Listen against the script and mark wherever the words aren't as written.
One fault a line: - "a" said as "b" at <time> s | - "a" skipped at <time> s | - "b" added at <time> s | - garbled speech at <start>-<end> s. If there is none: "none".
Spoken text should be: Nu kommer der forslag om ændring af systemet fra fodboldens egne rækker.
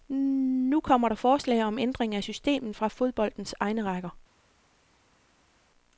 none